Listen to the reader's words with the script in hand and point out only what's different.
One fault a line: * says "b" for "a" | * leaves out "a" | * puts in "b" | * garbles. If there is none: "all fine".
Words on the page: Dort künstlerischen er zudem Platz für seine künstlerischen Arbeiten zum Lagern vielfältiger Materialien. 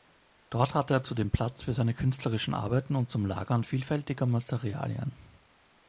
* says "hatte" for "künstlerischen"
* puts in "und"